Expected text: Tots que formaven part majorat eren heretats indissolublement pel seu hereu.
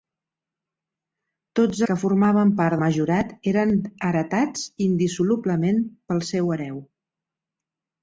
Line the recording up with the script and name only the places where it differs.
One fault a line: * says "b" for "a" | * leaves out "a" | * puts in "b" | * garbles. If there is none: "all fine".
all fine